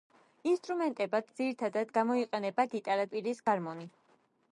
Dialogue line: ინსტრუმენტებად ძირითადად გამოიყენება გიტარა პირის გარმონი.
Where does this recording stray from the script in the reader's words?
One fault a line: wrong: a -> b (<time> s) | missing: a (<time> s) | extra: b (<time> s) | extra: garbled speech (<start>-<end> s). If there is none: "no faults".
no faults